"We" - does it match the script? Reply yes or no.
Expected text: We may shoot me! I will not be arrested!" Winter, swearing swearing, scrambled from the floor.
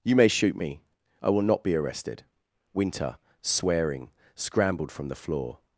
no